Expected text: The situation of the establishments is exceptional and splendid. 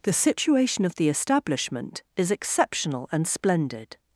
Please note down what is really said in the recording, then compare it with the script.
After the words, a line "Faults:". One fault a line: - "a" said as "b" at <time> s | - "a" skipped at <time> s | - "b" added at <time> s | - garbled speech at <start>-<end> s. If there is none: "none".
The situation of the establishment is exceptional and splendid.
Faults:
- "establishments" said as "establishment" at 1.1 s